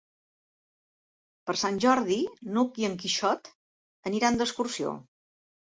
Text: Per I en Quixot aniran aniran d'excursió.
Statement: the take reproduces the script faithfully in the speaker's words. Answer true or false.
false